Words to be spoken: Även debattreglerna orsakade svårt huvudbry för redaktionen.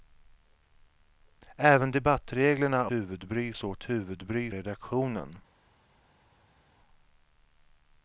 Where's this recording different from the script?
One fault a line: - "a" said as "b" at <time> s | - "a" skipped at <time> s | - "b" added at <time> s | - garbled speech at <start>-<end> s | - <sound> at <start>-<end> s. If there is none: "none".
- "orsakade" said as "huvudbry" at 2.9 s
- "för" skipped at 4.5 s